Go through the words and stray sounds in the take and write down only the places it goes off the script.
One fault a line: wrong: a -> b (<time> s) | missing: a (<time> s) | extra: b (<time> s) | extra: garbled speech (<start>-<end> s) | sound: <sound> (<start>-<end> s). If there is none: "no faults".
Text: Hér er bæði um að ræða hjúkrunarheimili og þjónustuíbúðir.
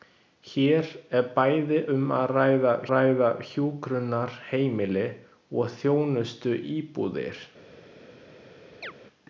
extra: ræða (2.9 s)
sound: chirp (8.8-8.9 s)